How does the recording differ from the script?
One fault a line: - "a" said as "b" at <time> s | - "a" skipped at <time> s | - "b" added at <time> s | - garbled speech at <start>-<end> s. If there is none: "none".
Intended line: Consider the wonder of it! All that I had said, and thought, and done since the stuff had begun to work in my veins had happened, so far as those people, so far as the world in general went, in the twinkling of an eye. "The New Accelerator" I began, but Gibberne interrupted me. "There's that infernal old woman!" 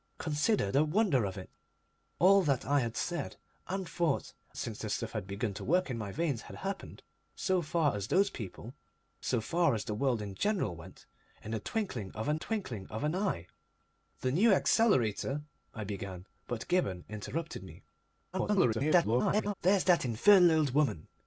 - "and done" skipped at 4.3 s
- "twinkling of an" added at 12.3 s
- garbled speech at 18.3-19.5 s